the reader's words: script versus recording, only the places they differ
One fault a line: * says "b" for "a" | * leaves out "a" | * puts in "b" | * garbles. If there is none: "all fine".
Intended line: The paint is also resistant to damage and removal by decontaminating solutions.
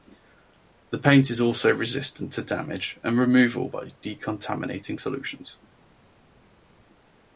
all fine